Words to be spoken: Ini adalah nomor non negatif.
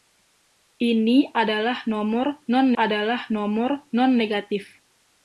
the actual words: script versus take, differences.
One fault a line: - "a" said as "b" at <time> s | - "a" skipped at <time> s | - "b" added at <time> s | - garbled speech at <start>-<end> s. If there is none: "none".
- "adalah nomor non" added at 2.7 s